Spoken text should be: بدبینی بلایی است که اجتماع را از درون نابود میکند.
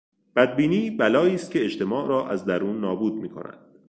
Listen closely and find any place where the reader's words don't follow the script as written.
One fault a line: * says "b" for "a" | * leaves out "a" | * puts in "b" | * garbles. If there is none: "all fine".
all fine